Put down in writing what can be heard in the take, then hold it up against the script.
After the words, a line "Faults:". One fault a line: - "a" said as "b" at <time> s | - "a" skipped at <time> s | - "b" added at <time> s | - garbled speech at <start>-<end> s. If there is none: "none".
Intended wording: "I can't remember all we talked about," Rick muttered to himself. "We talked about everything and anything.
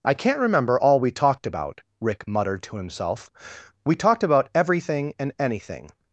"I can't remember all we talked about," Rick muttered to himself. "We talked about everything and anything.
Faults:
none